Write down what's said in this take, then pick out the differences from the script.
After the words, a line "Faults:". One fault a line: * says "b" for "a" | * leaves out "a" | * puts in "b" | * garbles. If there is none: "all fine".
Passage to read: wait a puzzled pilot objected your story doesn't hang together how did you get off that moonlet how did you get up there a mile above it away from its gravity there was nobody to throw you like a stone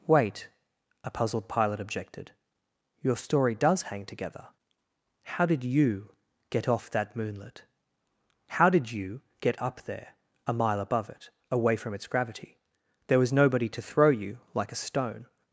wait a puzzled pilot objected your story does hang together how did you get off that moonlet how did you get up there a mile above it away from its gravity there was nobody to throw you like a stone
Faults:
* says "does" for "doesn't"